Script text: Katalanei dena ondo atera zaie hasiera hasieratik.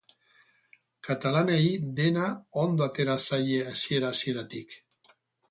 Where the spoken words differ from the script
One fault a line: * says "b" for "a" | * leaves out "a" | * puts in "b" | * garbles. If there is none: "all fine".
all fine